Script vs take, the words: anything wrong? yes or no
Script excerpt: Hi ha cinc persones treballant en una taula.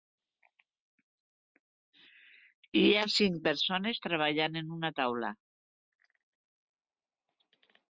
no